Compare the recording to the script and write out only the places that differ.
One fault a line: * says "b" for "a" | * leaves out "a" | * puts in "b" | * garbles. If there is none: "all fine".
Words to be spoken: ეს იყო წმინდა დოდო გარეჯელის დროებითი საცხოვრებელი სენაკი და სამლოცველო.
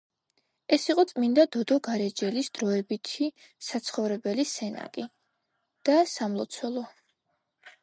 all fine